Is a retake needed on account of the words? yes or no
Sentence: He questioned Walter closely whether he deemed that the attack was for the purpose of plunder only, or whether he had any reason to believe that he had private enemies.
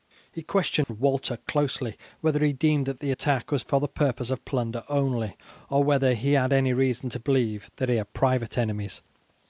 no